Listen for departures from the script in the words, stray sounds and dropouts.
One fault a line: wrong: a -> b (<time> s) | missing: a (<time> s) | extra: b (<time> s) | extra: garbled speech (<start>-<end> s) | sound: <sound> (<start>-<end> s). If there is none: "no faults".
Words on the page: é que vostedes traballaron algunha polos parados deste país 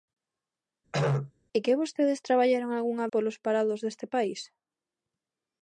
sound: throat clearing (0.9-1.3 s)